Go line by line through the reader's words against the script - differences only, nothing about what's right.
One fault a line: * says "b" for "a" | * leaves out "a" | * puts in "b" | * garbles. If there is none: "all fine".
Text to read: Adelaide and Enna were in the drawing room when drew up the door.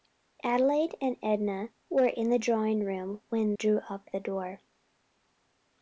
all fine